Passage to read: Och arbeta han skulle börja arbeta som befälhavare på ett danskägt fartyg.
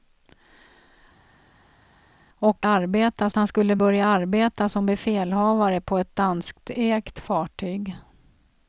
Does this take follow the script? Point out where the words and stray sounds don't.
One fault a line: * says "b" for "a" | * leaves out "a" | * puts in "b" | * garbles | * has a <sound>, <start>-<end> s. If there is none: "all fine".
all fine